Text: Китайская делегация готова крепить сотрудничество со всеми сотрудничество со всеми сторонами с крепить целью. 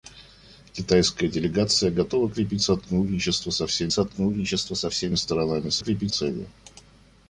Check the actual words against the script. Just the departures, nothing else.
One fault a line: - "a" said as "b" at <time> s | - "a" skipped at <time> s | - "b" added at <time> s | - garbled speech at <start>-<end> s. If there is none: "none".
none